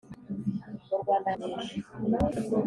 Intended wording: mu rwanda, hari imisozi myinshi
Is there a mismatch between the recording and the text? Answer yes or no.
yes